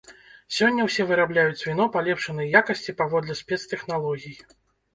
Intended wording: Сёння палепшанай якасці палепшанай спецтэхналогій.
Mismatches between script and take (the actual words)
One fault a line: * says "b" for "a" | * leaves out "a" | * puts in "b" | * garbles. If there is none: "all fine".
* puts in "ўсе вырабляюць віно"
* says "паводле" for "палепшанай"